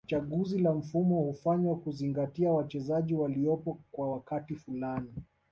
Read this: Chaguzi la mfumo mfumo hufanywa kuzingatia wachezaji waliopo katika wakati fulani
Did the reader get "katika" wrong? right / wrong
wrong